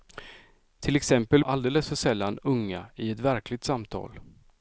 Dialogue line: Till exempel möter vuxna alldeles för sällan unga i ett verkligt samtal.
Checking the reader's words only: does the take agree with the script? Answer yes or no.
no